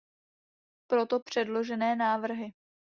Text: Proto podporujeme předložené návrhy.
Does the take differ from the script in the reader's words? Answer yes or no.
yes